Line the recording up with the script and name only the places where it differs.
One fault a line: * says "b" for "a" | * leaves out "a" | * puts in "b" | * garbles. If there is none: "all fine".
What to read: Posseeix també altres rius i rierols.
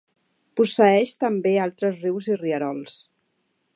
all fine